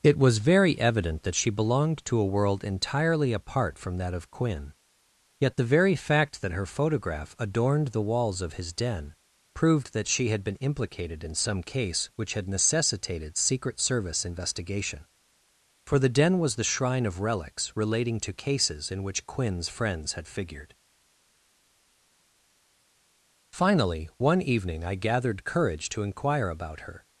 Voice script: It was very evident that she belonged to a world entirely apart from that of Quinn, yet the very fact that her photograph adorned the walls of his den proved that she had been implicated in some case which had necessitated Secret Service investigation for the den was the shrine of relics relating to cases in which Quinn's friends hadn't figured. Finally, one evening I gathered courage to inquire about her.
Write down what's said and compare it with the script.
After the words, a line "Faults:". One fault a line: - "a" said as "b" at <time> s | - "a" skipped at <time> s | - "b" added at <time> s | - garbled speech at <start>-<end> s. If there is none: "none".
It was very evident that she belonged to a world entirely apart from that of Quinn, yet the very fact that her photograph adorned the walls of his den proved that she had been implicated in some case which had necessitated Secret Service investigation for the den was the shrine of relics relating to cases in which Quinn's friends had figured. Finally, one evening I gathered courage to inquire about her.
Faults:
- "hadn't" said as "had" at 20.1 s